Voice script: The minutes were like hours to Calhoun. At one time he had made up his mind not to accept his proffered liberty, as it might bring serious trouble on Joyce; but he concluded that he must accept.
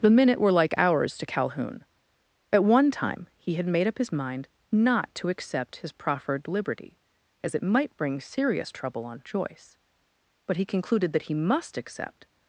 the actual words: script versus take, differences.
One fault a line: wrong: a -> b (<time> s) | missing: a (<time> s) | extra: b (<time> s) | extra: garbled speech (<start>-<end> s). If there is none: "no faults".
wrong: minutes -> minute (0.1 s)